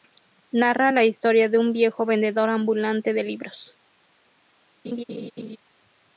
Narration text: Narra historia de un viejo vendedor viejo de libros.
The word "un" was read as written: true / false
true